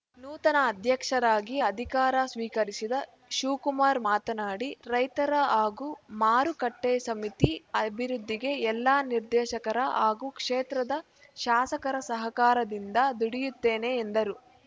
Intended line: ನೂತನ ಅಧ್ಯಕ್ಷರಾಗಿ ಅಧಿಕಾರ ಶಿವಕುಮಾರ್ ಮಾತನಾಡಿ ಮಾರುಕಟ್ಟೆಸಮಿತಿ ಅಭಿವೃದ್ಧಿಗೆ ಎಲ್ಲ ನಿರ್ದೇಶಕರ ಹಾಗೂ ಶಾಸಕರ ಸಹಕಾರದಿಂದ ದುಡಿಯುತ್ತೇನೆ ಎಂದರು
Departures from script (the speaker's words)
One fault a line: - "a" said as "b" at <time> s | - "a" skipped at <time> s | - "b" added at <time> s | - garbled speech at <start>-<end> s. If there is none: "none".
- "ಸ್ವೀಕರಿಸಿದ" added at 2.3 s
- "ರೈತರ ಹಾಗೂ" added at 4.9 s
- "ಕ್ಷೇತ್ರದ" added at 10.4 s